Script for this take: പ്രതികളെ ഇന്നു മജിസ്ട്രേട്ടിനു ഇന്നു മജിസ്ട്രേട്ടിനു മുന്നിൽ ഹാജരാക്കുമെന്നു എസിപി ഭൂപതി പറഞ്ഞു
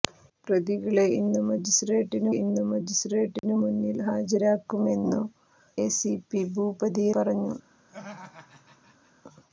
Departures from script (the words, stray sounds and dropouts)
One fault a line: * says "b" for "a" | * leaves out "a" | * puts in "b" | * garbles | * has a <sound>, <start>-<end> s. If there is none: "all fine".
* has a dropout, 3.4-3.4 s
* has a laugh, 7.9-9.1 s